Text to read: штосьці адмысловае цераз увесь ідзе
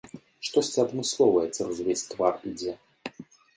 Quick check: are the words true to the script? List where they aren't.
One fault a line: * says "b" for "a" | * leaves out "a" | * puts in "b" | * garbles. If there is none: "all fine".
* puts in "твар"